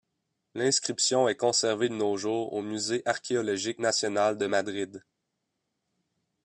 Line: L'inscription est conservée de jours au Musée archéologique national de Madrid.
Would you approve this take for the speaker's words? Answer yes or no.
no